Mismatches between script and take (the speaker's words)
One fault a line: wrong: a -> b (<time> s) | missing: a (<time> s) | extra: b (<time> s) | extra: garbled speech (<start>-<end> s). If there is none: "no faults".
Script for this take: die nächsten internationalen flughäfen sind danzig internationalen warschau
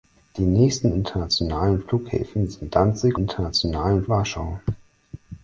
no faults